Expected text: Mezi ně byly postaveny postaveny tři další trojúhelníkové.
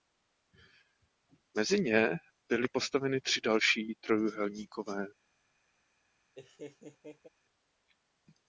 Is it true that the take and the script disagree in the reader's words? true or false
true